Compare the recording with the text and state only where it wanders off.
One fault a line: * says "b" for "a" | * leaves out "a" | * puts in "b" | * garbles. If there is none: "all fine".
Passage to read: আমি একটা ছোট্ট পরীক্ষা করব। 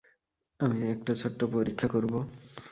all fine